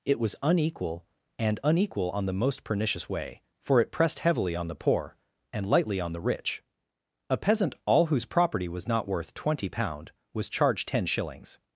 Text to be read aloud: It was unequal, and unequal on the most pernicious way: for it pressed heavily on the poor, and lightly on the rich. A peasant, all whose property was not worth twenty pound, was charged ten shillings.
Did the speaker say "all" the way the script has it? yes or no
yes